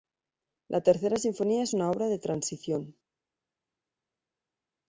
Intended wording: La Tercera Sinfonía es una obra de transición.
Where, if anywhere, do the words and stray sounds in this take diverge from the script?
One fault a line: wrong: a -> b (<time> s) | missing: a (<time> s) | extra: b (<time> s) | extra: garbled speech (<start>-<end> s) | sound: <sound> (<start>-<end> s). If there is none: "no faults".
no faults